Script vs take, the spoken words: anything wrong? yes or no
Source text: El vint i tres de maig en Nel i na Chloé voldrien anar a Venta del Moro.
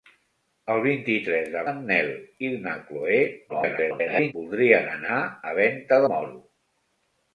yes